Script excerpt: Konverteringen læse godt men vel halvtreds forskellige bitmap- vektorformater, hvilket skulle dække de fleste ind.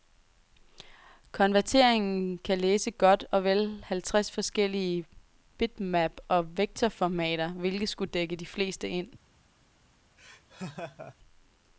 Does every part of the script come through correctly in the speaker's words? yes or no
no